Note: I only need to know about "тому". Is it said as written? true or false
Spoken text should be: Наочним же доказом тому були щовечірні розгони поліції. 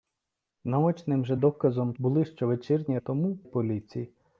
false